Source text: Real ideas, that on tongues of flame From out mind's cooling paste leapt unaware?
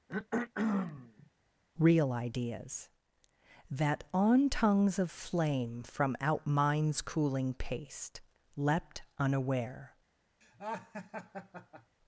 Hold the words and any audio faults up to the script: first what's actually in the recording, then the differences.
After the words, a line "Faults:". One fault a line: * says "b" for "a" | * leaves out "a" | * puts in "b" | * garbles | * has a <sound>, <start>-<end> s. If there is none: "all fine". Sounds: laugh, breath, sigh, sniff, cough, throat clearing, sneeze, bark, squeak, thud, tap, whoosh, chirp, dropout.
Real ideas, that on tongues of flame From out mind's cooling paste leapt unaware?
Faults:
* has a throat clearing, 0.1-1.3 s
* has a laugh, 10.4-12.0 s